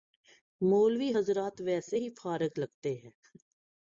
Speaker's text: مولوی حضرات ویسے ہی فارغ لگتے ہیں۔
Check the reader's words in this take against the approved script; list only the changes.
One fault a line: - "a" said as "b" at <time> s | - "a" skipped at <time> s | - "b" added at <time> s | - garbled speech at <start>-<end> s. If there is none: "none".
none